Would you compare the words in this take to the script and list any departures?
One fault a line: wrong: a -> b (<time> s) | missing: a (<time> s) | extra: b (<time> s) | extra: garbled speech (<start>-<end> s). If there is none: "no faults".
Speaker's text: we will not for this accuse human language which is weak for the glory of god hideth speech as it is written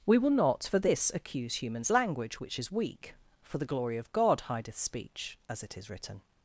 wrong: human -> humans (1.6 s)